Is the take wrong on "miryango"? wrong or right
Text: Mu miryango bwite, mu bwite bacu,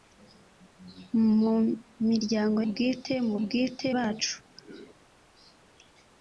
right